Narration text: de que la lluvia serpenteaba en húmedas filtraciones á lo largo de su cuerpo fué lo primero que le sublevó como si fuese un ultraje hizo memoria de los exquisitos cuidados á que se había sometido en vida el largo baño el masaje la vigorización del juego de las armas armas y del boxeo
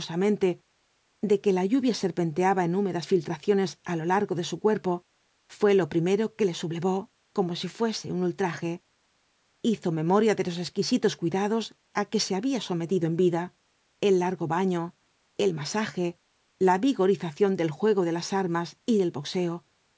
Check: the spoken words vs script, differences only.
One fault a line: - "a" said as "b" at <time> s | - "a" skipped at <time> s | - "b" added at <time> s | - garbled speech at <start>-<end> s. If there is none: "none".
- "armas" skipped at 18.7 s